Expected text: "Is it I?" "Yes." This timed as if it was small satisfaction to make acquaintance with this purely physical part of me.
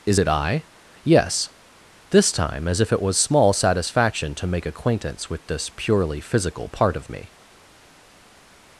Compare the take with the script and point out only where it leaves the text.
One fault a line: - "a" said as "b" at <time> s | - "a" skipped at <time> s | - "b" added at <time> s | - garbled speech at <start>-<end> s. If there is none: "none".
- "timed" said as "time" at 2.3 s